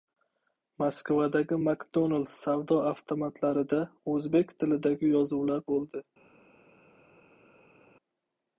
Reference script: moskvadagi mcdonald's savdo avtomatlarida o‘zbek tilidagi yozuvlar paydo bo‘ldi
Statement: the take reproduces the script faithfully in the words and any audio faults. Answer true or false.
false